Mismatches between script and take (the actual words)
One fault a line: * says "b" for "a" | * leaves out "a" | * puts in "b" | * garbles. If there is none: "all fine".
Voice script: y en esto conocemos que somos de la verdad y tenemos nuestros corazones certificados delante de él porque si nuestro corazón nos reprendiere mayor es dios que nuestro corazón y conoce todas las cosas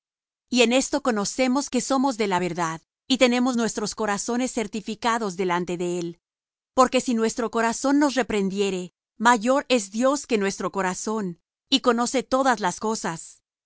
all fine